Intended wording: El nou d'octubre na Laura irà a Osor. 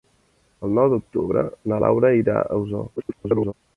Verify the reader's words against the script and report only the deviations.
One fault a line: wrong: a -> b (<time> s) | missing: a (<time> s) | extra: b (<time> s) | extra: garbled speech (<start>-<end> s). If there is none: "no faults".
extra: garbled speech (3.0-3.5 s)